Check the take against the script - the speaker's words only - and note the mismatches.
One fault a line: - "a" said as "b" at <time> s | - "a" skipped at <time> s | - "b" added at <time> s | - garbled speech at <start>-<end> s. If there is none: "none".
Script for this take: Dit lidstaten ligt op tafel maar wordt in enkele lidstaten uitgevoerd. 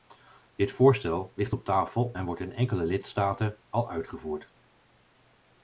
- "lidstaten" said as "voorstel" at 0.7 s
- "maar" said as "en" at 2.1 s
- "al" added at 3.7 s